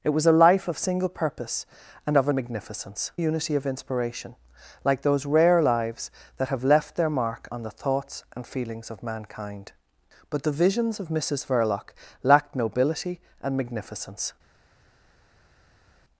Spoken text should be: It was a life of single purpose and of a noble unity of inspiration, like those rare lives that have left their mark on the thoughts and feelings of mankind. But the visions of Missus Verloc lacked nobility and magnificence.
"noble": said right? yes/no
no